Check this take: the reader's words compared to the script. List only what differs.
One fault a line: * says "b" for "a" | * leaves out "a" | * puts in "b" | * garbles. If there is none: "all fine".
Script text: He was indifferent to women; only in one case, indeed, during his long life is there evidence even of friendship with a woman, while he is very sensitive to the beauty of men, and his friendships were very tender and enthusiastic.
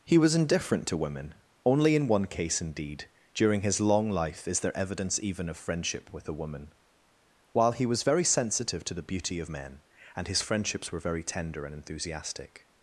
* says "was" for "is"